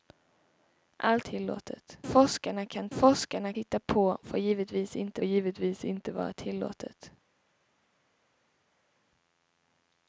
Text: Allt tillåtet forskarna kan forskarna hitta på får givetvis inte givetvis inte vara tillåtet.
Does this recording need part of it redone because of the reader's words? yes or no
no